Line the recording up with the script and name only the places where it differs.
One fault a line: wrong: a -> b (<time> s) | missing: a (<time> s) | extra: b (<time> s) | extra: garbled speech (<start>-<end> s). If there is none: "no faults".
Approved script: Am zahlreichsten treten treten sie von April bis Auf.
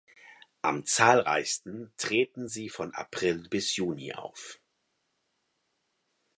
missing: treten (2.5 s)
extra: Juni (3.8 s)